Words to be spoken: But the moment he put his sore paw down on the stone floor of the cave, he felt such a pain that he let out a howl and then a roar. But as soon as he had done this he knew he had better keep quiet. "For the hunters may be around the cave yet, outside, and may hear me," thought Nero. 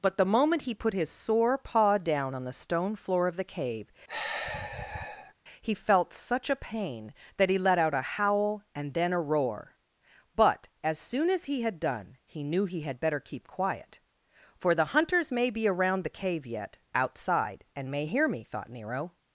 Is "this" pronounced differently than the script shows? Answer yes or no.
yes